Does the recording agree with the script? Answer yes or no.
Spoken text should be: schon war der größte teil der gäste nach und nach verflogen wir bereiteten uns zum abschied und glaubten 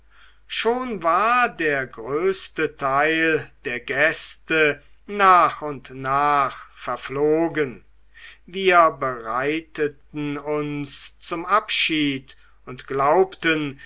yes